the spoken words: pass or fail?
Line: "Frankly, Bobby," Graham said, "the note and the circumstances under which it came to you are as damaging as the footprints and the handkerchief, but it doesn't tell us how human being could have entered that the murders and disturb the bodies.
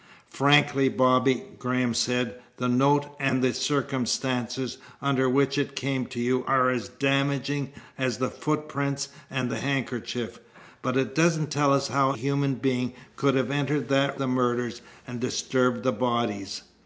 pass